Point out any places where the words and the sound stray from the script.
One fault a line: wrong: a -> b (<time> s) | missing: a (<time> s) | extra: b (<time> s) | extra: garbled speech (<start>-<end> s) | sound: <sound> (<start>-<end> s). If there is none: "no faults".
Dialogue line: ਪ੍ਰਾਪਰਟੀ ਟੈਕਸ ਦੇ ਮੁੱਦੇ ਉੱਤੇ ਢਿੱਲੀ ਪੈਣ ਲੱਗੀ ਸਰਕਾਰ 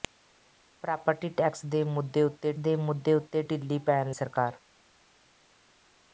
extra: ਦੇ ਮੁੱਦੇ ਉੱਤੇ (2.6 s)
missing: ਲੱਗੀ (4.1 s)